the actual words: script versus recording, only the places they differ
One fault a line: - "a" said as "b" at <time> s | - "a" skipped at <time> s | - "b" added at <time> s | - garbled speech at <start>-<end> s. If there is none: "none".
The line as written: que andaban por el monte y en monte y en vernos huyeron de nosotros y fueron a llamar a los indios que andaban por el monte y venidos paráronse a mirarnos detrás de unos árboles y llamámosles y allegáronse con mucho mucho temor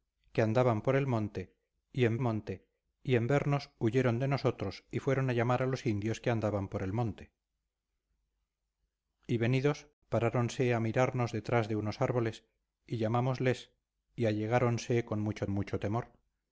none